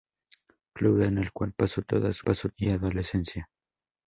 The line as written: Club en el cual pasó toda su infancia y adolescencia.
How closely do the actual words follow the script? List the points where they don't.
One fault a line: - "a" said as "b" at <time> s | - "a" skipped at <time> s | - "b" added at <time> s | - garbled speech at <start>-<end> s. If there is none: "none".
- "infancia" said as "pasó" at 2.2 s